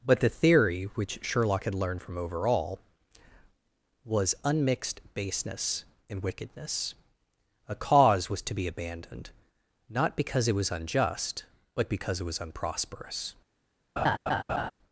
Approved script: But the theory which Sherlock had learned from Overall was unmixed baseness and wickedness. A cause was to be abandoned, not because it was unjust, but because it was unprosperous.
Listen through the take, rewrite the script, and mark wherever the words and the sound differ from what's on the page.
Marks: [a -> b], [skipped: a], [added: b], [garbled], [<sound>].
But the theory which Sherlock had learned from Overall was unmixed baseness and wickedness. A cause was to be abandoned, not because it was unjust, but because it was unprosperous. [laugh]